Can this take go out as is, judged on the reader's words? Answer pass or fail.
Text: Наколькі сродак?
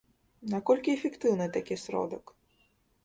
fail